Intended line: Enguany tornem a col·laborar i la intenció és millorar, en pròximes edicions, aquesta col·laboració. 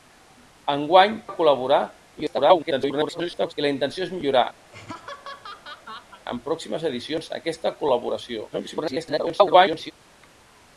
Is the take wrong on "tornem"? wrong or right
wrong